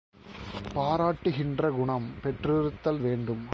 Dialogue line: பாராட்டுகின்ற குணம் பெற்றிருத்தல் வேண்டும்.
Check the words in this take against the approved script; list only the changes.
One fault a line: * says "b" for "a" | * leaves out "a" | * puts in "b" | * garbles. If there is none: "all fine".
all fine